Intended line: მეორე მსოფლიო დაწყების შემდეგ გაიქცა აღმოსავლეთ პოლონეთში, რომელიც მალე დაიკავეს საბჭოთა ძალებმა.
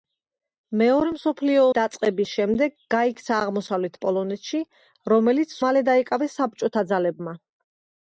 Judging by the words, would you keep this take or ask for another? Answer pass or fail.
pass